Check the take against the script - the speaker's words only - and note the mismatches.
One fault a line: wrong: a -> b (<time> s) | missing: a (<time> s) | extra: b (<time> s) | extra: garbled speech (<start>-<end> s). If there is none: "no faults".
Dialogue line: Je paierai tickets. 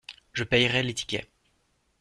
extra: les (0.8 s)